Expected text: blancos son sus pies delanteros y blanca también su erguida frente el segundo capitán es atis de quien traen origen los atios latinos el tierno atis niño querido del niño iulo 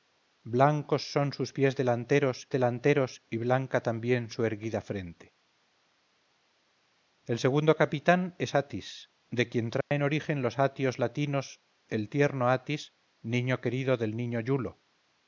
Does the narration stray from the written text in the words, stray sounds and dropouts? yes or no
yes